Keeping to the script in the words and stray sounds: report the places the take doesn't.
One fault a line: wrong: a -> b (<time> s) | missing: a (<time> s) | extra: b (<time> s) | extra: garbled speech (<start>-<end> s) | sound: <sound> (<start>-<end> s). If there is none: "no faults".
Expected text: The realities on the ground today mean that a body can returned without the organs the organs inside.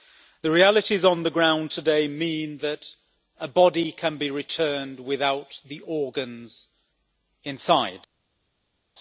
extra: be (4.2 s)
missing: the organs (6.7 s)